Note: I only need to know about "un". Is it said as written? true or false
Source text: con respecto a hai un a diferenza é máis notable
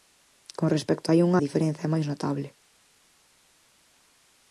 true